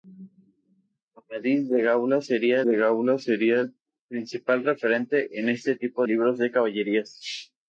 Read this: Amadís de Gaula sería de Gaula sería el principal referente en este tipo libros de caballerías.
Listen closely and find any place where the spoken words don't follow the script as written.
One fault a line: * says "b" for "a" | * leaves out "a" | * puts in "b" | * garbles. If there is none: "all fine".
all fine